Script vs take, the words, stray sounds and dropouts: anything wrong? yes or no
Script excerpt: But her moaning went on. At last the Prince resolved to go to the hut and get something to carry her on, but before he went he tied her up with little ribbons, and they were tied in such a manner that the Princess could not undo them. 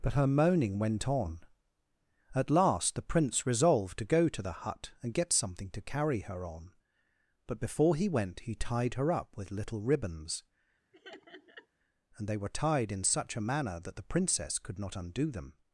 yes